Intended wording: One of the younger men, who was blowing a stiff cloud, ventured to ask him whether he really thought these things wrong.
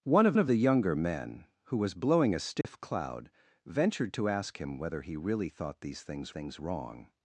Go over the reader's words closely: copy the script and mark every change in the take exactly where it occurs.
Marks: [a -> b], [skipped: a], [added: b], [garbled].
One of [added: of] the younger men, who was blowing a stiff cloud, ventured to ask him whether he really thought these things [added: things] wrong.